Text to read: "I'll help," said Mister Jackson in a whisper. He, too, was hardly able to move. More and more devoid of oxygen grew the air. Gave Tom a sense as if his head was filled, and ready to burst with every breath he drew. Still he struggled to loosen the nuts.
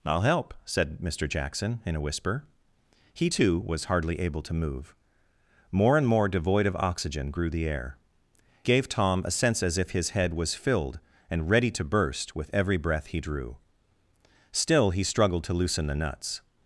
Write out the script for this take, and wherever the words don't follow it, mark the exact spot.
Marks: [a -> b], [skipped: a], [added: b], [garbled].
"I'll help," said Mister Jackson in a whisper. He, too, was hardly able to move. More and more devoid of oxygen grew the air. Gave Tom a sense as if his head was filled, and ready to burst with every breath he drew. Still he struggled to loosen the nuts.